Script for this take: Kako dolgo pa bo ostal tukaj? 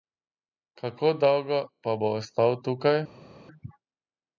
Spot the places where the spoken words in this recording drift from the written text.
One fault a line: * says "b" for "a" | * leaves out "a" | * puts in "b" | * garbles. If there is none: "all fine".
all fine